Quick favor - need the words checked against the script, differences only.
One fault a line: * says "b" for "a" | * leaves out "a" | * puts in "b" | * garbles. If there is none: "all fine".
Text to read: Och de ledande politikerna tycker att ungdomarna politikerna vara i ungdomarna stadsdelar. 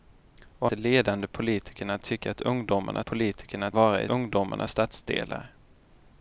all fine